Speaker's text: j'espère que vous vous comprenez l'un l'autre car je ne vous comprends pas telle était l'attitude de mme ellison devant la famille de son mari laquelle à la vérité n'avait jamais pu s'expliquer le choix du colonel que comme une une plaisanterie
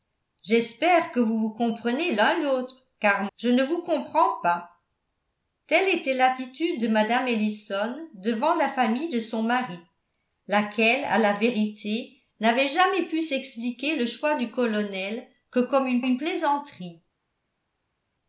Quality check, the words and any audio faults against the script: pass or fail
pass